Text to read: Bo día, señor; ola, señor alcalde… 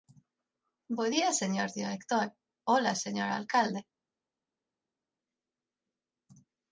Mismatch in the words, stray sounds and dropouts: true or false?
true